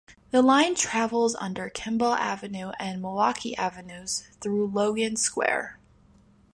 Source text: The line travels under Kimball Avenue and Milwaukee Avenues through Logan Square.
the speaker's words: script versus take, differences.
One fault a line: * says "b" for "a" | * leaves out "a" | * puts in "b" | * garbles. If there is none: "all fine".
all fine